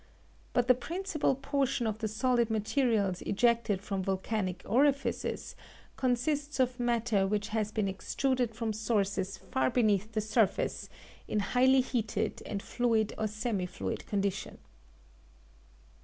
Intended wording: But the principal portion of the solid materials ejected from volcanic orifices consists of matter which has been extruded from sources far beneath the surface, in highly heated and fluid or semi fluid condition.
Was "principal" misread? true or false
false